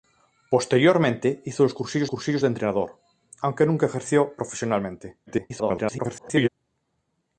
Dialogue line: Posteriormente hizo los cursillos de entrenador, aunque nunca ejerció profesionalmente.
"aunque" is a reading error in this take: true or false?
false